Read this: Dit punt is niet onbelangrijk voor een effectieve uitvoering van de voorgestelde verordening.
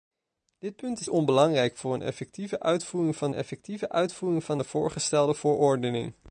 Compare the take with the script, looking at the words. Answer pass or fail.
fail